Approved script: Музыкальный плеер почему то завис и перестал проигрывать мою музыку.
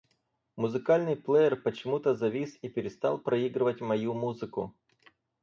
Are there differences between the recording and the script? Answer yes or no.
no